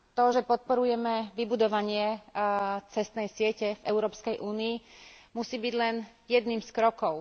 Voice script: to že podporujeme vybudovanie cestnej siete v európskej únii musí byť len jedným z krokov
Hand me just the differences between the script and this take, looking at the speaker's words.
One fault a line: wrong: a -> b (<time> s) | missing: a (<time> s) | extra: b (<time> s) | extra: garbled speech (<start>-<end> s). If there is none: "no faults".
no faults